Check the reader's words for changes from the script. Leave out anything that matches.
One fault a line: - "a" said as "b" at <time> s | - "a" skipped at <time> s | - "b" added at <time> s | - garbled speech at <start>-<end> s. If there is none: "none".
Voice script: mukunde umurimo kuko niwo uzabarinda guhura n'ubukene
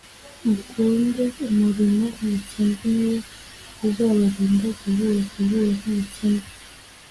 - "kuko" said as "n'ubukene" at 2.2 s
- "guhura" added at 5.3 s